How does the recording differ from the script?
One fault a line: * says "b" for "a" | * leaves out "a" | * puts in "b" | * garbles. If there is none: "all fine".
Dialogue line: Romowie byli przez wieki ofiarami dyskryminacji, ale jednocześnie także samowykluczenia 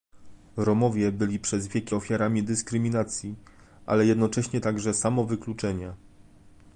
all fine